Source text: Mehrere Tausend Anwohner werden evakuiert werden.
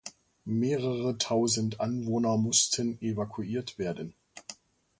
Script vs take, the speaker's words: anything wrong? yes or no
yes